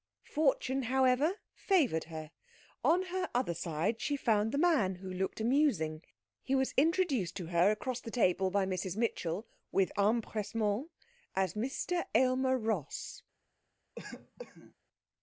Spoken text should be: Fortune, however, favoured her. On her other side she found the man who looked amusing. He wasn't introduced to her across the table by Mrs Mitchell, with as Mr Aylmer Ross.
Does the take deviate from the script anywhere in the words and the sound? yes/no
yes